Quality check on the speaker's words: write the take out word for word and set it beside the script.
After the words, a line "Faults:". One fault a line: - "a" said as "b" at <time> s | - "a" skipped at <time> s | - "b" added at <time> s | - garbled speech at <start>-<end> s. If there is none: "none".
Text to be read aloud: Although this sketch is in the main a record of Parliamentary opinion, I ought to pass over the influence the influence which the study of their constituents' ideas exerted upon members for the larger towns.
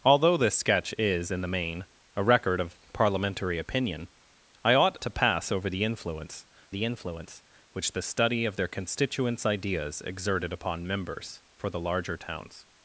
Although this sketch is in the main a record of Parliamentary opinion, I ought to pass over the influence the influence which the study of their constituents' ideas exerted upon members for the larger towns.
Faults:
none